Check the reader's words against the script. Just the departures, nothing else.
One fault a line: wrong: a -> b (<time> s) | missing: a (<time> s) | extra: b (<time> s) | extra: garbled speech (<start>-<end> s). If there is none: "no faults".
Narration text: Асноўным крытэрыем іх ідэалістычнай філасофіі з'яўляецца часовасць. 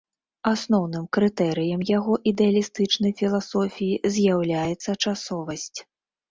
wrong: іх -> яго (2.0 s)